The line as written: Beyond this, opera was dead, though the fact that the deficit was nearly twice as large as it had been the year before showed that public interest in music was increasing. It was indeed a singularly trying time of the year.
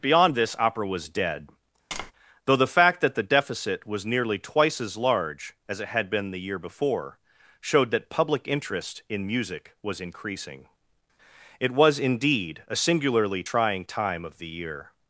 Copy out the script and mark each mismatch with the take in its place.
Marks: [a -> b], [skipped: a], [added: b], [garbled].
Beyond this, opera was dead, though the fact that the deficit was nearly twice as large as it had been the year before showed that public interest in music was increasing. It was indeed a singularly trying time of the year.